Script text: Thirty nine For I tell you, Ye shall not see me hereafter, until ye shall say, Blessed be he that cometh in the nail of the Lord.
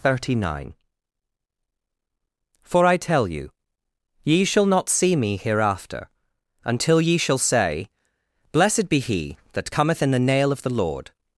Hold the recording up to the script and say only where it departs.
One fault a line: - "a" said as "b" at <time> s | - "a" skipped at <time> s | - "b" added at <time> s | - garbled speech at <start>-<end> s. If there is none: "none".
none